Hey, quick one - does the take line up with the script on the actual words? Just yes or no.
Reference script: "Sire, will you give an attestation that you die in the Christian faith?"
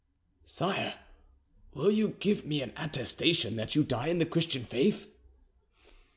no